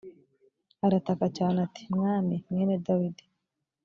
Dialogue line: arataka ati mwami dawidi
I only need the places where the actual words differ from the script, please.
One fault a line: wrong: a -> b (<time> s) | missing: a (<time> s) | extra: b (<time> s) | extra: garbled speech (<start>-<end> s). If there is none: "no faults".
extra: cyane (1.4 s)
extra: mwene (2.5 s)